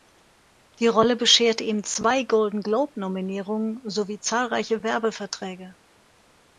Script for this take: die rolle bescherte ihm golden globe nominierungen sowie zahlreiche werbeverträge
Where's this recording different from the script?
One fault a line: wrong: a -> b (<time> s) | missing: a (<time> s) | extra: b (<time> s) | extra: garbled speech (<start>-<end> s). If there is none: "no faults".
extra: zwei (1.8 s)